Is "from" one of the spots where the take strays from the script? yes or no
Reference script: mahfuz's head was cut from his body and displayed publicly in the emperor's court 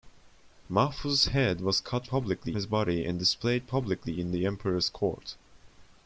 yes